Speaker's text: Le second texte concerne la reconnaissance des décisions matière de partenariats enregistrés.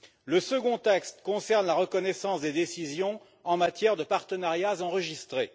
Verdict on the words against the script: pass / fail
fail